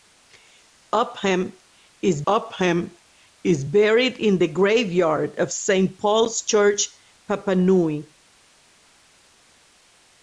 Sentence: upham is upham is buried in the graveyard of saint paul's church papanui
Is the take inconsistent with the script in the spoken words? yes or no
no